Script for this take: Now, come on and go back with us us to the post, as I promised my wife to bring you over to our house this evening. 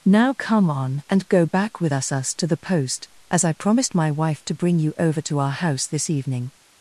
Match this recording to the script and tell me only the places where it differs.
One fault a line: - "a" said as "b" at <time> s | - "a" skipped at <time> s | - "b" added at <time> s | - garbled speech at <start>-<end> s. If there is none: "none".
none